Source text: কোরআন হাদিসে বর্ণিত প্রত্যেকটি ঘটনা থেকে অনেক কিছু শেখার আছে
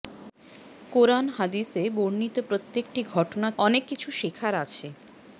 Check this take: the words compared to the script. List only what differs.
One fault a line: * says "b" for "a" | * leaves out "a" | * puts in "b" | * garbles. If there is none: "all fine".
* leaves out "থেকে"